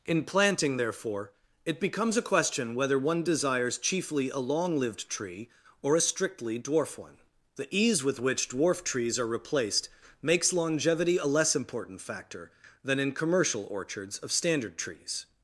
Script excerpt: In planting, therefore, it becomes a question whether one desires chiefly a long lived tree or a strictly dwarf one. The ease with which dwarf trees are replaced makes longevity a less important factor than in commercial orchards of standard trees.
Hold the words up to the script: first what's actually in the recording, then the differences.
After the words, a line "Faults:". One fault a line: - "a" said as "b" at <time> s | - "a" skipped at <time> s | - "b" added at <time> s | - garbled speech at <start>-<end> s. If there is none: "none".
In planting, therefore, it becomes a question whether one desires chiefly a long lived tree or a strictly dwarf one. The ease with which dwarf trees are replaced makes longevity a less important factor than in commercial orchards of standard trees.
Faults:
none